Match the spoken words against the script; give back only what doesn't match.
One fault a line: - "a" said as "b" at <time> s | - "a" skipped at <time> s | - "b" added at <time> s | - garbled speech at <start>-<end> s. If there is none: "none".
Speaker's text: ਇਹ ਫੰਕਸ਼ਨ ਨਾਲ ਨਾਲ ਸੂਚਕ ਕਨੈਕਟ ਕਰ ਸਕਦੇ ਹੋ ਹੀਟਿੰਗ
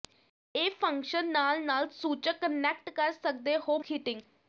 none